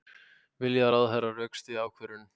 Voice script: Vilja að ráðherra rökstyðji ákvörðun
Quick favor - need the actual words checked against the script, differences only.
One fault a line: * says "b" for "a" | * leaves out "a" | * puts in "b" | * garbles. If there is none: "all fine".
all fine